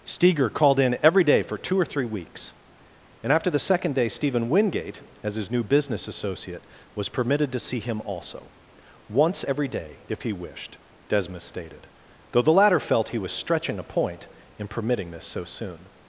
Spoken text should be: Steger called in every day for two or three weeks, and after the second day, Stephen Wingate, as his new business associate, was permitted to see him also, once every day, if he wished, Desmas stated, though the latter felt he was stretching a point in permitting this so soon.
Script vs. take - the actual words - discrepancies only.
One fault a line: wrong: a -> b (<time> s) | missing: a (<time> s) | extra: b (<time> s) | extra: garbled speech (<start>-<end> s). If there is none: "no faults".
no faults